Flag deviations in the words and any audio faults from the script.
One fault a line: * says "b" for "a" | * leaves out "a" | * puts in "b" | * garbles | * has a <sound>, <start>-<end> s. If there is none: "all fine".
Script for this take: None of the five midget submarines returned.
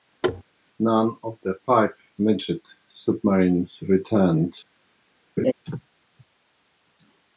* has a thud, 0.2-0.4 s
* has a laugh, 5.4-5.5 s